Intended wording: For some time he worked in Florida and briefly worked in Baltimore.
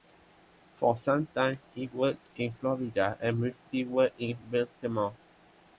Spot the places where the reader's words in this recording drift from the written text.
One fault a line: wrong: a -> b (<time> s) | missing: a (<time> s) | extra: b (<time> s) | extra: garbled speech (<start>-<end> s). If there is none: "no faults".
no faults